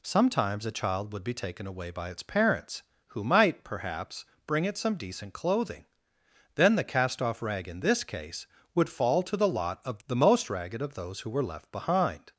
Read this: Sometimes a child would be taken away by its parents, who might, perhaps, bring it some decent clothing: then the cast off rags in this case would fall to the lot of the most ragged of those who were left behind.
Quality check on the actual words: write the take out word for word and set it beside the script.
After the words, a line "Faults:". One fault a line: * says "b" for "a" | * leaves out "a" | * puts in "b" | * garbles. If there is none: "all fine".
Sometimes a child would be taken away by its parents, who might, perhaps, bring it some decent clothing: then the cast off rag in this case would fall to the lot of the most ragged of those who were left behind.
Faults:
* says "rag" for "rags"